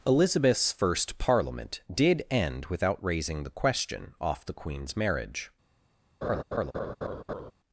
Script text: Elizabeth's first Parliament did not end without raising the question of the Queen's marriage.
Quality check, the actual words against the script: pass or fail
fail